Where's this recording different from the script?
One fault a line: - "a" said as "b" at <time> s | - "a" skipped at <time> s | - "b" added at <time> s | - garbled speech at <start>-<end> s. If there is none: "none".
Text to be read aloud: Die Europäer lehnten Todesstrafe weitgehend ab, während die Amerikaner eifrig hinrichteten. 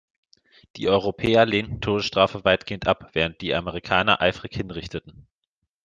none